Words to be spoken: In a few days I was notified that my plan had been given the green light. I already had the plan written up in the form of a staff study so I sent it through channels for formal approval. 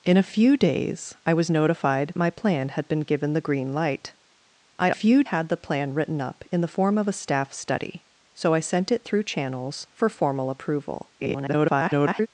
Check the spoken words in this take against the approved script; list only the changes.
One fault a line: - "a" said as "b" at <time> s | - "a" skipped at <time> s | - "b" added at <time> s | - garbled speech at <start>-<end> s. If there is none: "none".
- "that" skipped at 2.1 s
- "already" said as "few" at 4.9 s
- garbled speech at 11.2-12.3 s